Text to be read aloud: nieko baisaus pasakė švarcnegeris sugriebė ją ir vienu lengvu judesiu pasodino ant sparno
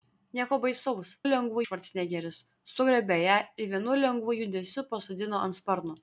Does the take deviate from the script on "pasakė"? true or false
true